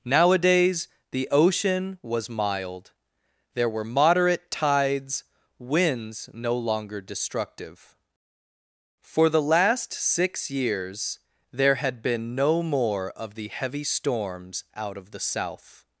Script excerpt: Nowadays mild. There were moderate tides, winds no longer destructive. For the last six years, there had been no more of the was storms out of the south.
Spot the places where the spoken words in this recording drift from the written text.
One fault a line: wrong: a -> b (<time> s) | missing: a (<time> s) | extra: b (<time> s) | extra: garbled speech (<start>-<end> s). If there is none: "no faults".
extra: the ocean was (1.1 s)
wrong: was -> heavy (13.5 s)